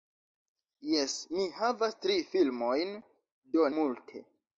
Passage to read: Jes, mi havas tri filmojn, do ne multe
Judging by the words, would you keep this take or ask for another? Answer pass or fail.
fail